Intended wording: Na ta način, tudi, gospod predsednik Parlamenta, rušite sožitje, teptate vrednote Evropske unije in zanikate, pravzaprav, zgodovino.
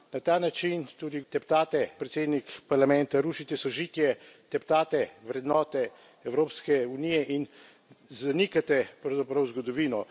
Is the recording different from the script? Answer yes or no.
yes